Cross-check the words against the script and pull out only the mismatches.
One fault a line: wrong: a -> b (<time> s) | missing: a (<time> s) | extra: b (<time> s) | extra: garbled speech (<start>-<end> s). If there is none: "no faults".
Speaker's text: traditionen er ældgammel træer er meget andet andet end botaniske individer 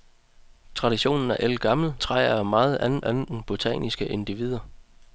no faults